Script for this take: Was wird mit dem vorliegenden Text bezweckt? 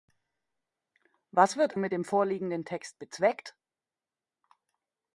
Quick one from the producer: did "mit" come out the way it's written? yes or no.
yes